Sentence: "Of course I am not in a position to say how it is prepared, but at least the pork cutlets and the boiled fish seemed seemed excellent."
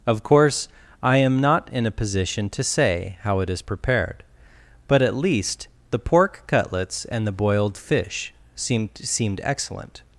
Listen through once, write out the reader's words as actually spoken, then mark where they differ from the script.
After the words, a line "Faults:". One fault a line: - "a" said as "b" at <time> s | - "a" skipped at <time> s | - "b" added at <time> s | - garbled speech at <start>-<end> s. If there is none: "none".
"Of course I am not in a position to say how it is prepared, but at least the pork cutlets and the boiled fish seemed seemed excellent."
Faults:
none